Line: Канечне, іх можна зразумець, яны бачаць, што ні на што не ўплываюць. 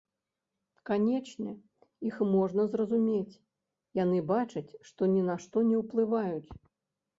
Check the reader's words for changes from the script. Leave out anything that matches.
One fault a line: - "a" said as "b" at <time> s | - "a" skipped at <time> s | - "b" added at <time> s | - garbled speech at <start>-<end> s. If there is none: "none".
none